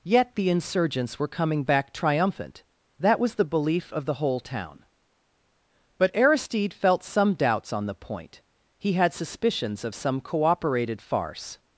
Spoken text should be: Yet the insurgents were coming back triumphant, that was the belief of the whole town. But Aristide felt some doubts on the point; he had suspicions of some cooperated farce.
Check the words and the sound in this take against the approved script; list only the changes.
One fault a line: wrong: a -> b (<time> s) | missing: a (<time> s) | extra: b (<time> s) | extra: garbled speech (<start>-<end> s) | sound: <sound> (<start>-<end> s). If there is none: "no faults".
no faults